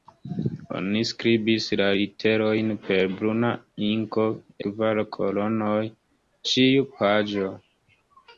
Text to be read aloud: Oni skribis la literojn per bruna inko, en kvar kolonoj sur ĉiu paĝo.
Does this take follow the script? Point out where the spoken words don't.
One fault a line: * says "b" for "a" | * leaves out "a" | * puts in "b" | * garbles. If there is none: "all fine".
* leaves out "en"
* leaves out "sur"